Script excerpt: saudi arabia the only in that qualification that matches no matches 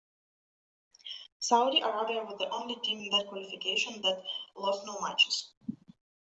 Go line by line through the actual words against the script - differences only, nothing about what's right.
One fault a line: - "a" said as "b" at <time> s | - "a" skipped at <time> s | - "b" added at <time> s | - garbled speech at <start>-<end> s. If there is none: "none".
- "was" added at 2.2 s
- "team" added at 2.8 s
- "matches" said as "lost" at 4.6 s